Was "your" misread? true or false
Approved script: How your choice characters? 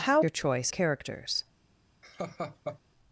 false